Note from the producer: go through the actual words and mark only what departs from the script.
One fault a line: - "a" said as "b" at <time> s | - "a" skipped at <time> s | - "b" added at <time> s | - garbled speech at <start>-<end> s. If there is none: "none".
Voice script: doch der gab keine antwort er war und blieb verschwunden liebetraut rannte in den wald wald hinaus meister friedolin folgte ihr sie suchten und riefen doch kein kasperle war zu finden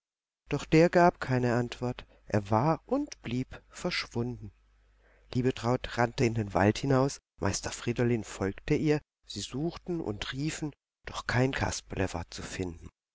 - "wald" skipped at 6.8 s